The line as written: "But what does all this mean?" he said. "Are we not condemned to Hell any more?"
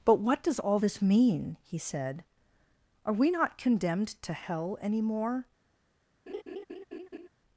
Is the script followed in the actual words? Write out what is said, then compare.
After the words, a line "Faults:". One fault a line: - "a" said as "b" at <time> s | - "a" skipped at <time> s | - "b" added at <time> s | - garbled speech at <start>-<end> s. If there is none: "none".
"But what does all this mean?" he said. "Are we not condemned to Hell any more?"
Faults:
none